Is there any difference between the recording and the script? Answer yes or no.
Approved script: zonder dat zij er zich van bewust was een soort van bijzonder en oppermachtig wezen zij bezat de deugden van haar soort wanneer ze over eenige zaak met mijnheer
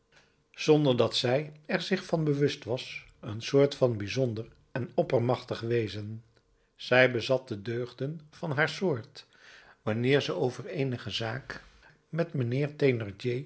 no